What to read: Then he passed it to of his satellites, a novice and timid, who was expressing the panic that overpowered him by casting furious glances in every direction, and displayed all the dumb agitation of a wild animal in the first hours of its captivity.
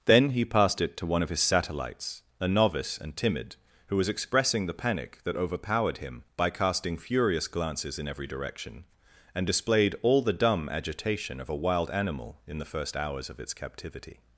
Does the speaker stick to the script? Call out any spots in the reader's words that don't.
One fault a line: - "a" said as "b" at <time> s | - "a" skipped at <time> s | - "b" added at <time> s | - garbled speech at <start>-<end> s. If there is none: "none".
- "one" added at 1.1 s